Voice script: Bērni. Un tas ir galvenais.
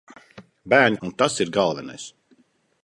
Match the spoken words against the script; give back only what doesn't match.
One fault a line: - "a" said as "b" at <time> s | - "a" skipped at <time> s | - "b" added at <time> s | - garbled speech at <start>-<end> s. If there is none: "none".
none